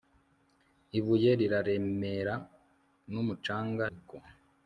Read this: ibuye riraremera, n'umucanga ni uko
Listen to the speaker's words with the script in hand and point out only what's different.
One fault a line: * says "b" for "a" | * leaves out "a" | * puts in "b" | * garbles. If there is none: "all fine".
* leaves out "ni"